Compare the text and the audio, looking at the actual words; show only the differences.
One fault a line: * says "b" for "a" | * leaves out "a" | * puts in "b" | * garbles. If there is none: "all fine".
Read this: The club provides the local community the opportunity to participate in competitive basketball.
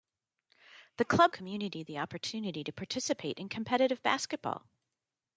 * leaves out "provides the local"